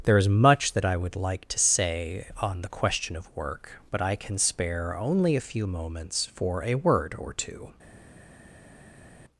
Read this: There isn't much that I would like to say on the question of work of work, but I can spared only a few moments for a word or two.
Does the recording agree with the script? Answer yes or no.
no